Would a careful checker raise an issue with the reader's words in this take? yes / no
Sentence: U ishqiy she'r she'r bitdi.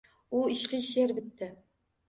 yes